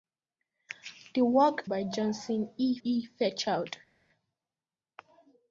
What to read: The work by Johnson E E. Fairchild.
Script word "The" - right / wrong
right